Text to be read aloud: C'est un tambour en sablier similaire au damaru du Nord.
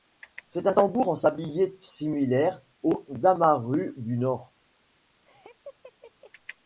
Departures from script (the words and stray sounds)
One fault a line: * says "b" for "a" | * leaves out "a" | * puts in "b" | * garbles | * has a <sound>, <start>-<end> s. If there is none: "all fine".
* has a laugh, 5.3-6.3 s